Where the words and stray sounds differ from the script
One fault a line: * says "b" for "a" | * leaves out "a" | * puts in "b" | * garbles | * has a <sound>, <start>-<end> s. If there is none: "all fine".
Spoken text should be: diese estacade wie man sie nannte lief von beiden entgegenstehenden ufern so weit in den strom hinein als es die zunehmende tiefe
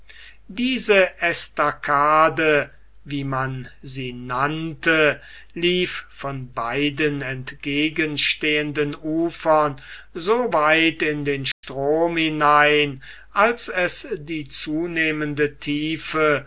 * has a dropout, 11.5-11.6 s